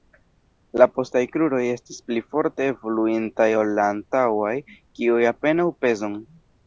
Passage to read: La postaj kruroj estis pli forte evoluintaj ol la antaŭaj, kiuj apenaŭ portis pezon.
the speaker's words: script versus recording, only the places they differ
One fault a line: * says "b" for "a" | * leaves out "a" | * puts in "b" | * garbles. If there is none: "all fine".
* leaves out "portis"